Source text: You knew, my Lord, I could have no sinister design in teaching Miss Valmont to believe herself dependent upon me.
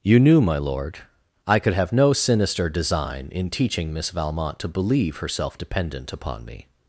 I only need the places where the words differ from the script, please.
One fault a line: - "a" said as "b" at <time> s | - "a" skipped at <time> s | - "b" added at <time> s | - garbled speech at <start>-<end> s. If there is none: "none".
none